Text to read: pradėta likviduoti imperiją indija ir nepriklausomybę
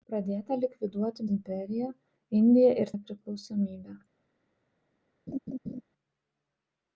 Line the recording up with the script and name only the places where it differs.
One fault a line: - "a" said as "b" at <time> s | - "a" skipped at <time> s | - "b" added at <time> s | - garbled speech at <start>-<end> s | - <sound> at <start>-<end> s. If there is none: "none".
- laugh at 5.3-5.8 s